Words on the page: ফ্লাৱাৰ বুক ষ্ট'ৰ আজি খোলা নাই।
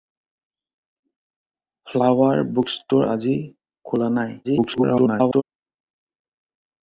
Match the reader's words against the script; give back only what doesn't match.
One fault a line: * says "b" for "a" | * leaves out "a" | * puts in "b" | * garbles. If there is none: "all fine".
* garbles